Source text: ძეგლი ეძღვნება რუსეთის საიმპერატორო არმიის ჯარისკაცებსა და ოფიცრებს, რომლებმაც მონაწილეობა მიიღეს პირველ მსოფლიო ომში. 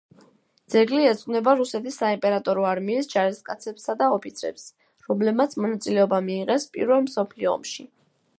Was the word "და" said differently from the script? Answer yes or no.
no